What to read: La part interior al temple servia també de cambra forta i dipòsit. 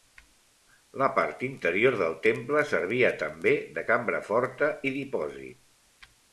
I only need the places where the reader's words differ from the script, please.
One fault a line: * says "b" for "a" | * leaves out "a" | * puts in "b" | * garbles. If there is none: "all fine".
* says "del" for "al"